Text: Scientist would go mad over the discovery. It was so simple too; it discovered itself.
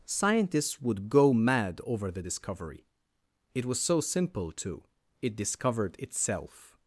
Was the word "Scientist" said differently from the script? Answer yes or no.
yes